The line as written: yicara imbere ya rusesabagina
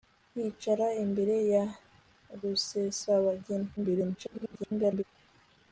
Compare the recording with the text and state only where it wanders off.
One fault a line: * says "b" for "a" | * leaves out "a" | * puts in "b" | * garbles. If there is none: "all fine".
* garbles